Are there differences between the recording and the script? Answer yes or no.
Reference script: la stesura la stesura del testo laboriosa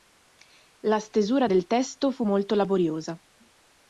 yes